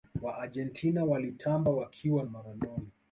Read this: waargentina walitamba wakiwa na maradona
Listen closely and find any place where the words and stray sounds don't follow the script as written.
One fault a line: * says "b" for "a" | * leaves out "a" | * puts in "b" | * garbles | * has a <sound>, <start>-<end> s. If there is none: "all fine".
* leaves out "na"